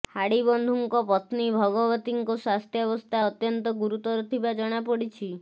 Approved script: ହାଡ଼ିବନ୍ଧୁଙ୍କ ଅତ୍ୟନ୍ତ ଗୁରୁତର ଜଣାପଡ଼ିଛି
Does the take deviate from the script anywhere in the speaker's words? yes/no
yes